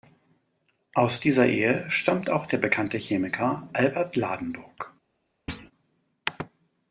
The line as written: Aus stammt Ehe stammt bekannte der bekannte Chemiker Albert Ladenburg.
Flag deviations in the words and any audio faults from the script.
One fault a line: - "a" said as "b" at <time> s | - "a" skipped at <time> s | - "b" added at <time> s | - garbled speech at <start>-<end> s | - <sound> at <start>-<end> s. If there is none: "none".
- "stammt" said as "dieser" at 1.2 s
- "bekannte" said as "auch" at 2.3 s
- thud at 5.5-5.7 s